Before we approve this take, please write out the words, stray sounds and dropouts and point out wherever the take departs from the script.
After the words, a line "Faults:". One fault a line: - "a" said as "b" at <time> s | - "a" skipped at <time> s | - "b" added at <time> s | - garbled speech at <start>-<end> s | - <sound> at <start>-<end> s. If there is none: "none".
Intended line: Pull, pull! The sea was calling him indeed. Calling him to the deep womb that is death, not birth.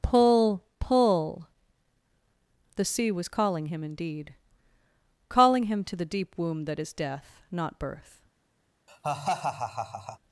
Pull, pull! The sea was calling him indeed. Calling him to the deep womb that is death, not birth.
Faults:
- laugh at 8.9-10.2 s